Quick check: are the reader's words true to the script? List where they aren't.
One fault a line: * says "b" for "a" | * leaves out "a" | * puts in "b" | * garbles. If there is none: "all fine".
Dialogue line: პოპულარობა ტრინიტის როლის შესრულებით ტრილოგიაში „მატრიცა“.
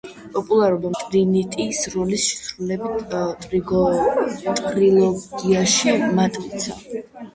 all fine